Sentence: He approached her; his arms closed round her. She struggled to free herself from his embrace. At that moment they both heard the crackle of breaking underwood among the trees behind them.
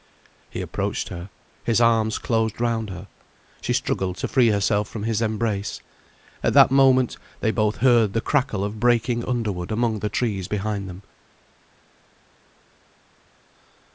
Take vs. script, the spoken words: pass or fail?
pass